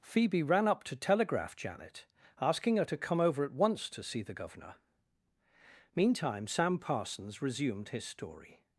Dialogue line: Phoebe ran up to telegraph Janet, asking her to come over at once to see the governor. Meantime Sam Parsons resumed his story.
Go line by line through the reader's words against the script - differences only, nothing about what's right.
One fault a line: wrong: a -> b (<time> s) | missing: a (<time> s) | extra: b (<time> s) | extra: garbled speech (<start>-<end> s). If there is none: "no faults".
no faults